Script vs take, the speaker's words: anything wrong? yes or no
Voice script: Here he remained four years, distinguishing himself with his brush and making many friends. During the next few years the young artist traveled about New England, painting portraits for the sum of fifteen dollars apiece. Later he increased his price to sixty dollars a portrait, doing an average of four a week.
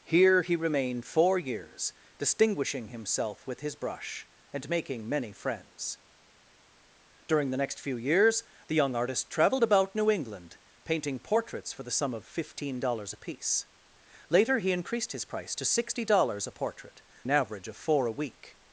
yes